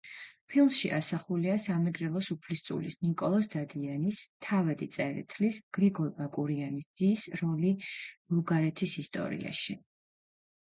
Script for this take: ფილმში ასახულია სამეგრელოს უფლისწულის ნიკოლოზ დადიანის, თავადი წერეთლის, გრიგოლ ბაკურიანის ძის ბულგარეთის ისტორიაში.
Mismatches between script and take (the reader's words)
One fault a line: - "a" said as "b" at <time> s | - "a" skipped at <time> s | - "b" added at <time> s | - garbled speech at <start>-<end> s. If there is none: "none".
- "როლი" added at 7.4 s